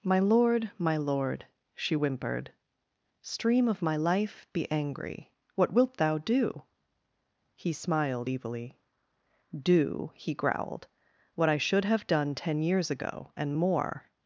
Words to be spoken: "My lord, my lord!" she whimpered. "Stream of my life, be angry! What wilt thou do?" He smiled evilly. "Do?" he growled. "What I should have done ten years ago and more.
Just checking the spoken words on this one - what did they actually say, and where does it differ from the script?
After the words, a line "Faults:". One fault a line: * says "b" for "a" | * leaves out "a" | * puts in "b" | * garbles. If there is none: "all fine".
"My lord, my lord!" she whimpered. "Stream of my life, be angry! What wilt thou do?" He smiled evilly. "Do?" he growled. "What I should have done ten years ago and more.
Faults:
all fine